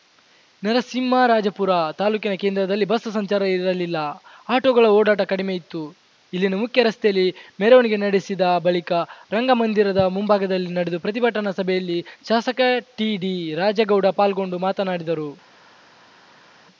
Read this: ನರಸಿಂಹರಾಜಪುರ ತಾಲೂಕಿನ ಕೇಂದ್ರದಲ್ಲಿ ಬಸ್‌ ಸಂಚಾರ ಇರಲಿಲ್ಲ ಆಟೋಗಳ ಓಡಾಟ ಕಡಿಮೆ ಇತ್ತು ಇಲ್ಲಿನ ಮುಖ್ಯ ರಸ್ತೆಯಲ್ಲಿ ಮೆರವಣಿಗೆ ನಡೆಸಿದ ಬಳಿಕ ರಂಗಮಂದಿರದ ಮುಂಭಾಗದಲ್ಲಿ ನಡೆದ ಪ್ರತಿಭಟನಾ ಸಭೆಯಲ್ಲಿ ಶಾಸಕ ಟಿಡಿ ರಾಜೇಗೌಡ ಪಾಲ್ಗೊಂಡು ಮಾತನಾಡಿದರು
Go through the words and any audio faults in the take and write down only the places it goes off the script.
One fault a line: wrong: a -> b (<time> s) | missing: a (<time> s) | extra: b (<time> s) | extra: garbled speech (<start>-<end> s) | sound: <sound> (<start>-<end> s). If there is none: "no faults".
no faults